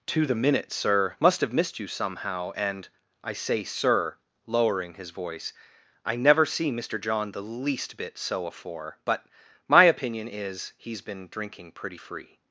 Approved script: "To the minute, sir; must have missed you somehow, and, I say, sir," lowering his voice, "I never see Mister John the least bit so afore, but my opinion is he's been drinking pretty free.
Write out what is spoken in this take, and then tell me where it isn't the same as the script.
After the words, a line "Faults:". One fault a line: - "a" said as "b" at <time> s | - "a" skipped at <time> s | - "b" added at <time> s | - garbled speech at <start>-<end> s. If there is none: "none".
"To the minute, sir; must have missed you somehow, and, I say, sir," lowering his voice, "I never see Mister John the least bit so afore, but my opinion is he's been drinking pretty free.
Faults:
none